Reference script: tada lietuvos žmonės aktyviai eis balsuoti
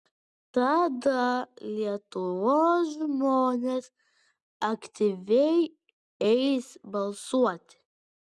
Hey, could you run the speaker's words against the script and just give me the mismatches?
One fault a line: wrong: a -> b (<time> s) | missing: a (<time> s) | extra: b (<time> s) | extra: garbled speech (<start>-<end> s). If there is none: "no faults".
no faults